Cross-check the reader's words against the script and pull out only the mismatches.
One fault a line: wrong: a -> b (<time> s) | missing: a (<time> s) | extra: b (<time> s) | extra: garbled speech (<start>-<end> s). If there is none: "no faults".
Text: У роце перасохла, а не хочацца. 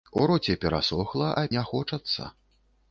no faults